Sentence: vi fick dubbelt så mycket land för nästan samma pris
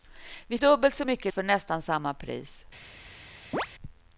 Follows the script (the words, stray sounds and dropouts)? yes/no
no